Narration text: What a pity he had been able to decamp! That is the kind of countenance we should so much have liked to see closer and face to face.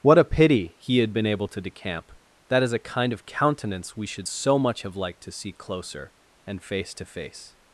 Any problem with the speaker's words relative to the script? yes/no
yes